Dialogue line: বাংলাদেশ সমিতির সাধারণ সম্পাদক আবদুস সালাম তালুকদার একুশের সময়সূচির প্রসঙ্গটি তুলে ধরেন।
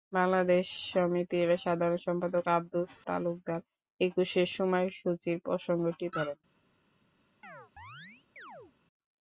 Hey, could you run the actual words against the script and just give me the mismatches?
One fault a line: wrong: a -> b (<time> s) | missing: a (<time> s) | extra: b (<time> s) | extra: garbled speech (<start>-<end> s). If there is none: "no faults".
missing: সালাম (2.9 s)
missing: তুলে (6.1 s)